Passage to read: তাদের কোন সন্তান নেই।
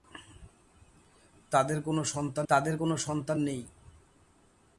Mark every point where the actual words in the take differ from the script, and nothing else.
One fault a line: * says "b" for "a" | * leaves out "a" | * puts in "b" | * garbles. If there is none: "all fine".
* puts in "তাদের কোন সন্তান"